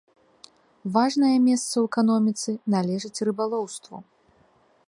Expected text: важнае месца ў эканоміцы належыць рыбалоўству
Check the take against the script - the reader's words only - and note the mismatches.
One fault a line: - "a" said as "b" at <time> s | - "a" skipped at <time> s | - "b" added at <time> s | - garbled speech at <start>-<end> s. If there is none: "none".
none